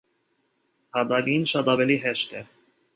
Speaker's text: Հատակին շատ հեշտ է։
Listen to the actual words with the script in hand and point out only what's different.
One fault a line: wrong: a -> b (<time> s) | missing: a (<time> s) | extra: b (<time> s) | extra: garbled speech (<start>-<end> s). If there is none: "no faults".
extra: ավելի (1.8 s)